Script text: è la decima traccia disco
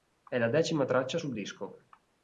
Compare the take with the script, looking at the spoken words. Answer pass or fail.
fail